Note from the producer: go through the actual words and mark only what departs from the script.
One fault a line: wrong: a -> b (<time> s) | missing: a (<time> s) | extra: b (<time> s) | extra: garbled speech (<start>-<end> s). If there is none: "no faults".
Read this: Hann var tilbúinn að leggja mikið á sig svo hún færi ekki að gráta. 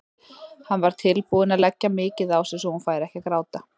no faults